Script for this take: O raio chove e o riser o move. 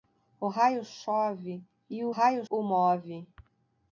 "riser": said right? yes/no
no